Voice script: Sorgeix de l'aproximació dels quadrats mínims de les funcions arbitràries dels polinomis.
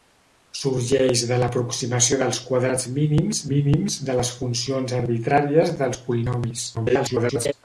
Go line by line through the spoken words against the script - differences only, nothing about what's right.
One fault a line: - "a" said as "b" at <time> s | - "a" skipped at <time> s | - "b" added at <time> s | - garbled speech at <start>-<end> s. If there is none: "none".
- "mínims" added at 3.5 s
- garbled speech at 6.7-7.5 s